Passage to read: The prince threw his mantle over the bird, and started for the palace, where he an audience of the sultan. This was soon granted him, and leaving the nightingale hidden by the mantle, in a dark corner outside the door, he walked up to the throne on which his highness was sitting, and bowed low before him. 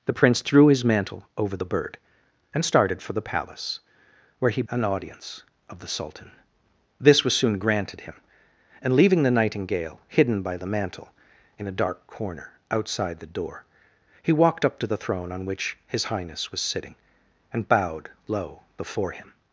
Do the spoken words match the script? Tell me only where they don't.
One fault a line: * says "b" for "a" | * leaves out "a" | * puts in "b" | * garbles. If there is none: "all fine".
all fine